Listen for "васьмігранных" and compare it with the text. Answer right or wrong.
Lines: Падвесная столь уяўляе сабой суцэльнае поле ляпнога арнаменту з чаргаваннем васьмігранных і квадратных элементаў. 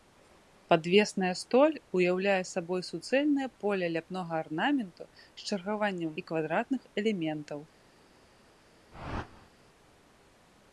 wrong